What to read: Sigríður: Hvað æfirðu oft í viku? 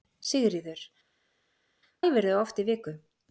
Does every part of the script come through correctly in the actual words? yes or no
no